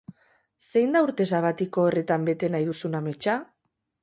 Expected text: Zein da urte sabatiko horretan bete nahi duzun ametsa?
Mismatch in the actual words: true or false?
false